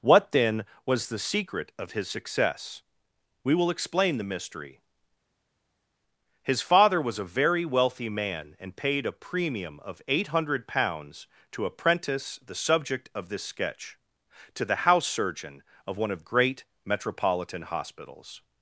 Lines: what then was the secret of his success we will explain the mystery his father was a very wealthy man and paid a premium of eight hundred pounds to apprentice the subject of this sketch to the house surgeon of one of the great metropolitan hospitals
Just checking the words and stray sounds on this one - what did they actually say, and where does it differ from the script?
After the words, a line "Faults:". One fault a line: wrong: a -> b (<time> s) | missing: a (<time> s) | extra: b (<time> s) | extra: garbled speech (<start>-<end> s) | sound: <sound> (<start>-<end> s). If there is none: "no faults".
what then was the secret of his success we will explain the mystery his father was a very wealthy man and paid a premium of eight hundred pounds to apprentice the subject of this sketch to the house surgeon of one of great metropolitan hospitals
Faults:
missing: the (16.2 s)